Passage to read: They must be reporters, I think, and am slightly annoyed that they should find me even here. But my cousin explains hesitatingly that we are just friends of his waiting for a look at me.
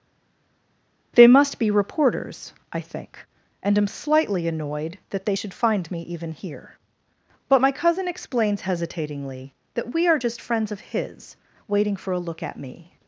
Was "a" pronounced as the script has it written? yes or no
yes